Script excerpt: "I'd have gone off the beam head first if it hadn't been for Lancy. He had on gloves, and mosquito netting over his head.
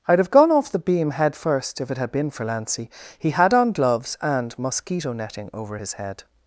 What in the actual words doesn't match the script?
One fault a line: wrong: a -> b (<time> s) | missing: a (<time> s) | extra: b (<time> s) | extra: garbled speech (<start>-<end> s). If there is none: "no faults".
wrong: hadn't -> had (2.0 s)